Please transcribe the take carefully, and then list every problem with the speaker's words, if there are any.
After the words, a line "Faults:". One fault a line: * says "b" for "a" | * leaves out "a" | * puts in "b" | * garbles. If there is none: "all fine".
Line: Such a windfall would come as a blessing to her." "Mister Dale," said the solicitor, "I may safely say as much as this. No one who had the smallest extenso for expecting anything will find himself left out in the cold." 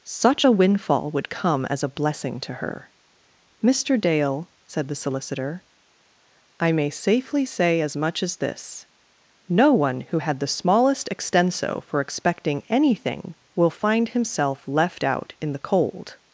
Such a windfall would come as a blessing to her." "Mister Dale," said the solicitor, "I may safely say as much as this. No one who had the smallest extenso for expecting anything will find himself left out in the cold."
Faults:
all fine